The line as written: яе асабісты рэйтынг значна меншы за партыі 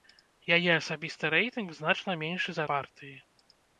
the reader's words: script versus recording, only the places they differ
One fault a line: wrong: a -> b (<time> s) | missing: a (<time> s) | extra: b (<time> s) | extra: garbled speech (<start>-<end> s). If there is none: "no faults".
no faults